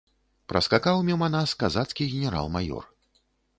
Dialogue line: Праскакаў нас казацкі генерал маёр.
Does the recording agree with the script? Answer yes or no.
no